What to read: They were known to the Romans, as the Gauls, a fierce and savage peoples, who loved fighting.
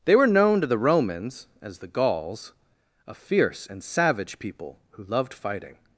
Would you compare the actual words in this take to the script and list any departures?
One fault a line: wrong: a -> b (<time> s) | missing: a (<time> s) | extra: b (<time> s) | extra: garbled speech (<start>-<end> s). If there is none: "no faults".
wrong: peoples -> people (4.4 s)